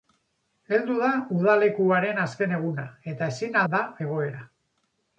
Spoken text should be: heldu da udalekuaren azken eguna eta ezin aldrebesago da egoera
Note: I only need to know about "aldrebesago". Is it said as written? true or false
false